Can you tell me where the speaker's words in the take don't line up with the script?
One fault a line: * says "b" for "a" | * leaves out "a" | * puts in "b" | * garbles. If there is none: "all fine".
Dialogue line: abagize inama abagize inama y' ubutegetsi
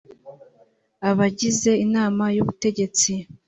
* leaves out "abagize inama"